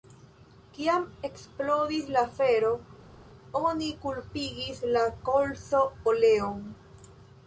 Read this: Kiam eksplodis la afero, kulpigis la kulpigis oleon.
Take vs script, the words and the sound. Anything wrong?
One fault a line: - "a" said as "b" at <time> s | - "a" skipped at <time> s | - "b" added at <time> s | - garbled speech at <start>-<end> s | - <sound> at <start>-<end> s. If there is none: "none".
- "oni" added at 3.6 s
- "kulpigis" said as "kolzo" at 5.3 s